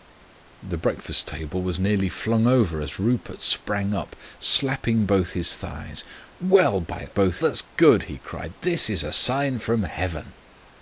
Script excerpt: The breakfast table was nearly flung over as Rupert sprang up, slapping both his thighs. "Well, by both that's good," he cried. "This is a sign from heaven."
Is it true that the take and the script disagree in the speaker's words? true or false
false